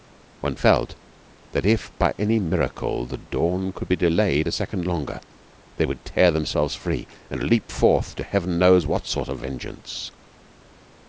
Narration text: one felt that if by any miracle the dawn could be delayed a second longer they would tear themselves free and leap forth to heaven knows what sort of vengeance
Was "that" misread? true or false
false